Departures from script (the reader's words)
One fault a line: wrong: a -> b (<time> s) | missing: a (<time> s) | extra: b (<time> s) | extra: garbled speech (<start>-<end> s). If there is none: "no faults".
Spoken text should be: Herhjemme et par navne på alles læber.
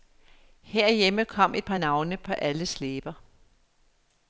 extra: kom (1.2 s)